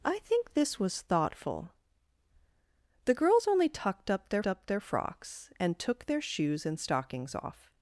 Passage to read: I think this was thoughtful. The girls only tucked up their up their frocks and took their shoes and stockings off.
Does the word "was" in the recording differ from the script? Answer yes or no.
no